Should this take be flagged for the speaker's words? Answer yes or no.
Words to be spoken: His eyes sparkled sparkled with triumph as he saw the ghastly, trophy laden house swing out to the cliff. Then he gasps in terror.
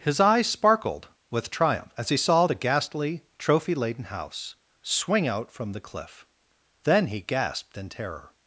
yes